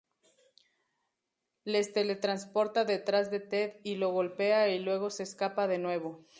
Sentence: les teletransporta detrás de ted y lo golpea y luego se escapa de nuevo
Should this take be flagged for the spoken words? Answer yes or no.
no